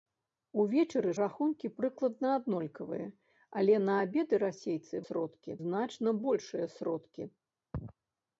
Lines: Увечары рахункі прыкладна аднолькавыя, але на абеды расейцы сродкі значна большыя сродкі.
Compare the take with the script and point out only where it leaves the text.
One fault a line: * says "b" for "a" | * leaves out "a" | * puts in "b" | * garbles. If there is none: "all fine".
all fine